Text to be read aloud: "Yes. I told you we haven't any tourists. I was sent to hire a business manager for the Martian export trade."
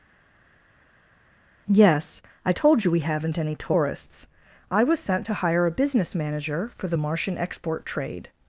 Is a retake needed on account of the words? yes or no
no